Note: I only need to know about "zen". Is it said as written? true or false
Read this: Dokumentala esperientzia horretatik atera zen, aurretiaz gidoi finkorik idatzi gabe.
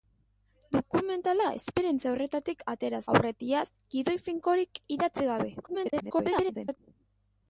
false